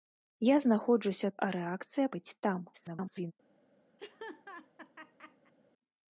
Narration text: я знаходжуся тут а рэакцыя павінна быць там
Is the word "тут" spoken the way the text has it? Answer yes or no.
no